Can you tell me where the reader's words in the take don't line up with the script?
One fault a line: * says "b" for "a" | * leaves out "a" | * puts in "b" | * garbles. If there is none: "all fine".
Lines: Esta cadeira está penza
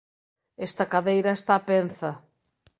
all fine